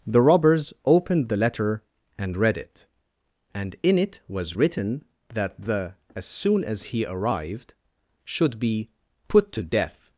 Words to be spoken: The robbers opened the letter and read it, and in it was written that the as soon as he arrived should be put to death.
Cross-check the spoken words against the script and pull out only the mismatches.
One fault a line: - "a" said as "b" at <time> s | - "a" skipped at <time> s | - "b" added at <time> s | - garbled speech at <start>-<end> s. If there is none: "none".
none